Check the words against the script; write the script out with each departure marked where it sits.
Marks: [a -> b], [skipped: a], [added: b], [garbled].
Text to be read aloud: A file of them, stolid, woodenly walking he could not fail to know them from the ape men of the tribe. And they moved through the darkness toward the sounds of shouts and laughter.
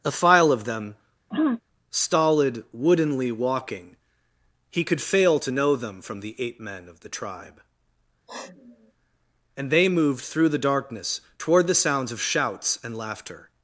A file of them, stolid, woodenly walking he could [skipped: not] fail to know them from the ape men of the tribe. And they moved through the darkness toward the sounds of shouts and laughter.